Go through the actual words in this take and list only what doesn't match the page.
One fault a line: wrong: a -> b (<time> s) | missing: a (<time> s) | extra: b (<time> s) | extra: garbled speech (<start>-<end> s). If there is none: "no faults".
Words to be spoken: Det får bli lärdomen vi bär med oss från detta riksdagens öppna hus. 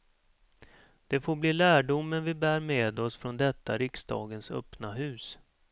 no faults